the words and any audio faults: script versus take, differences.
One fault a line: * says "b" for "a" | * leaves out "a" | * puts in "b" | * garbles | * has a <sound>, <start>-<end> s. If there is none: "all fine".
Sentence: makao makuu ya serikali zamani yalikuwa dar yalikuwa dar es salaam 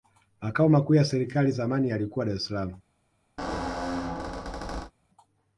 * leaves out "yalikuwa dar"
* has a squeak, 3.4-4.9 s